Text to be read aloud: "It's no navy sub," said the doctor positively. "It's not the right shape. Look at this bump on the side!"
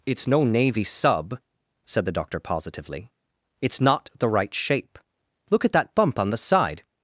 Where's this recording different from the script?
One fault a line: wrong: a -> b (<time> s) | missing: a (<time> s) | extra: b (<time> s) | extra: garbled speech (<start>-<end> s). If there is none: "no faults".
wrong: this -> that (5.7 s)